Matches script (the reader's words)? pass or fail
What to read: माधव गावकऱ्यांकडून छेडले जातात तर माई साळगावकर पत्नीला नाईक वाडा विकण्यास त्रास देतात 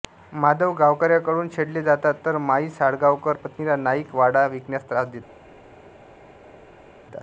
pass